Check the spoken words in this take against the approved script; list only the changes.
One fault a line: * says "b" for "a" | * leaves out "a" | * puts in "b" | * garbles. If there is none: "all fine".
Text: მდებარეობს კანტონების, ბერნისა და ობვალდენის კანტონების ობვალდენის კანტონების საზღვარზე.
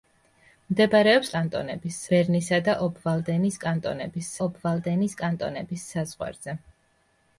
all fine